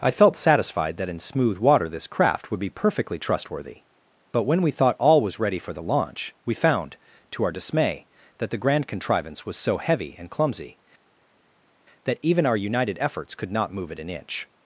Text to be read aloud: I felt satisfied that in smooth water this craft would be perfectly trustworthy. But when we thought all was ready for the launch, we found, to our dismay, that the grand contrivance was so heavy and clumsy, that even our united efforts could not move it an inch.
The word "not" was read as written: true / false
true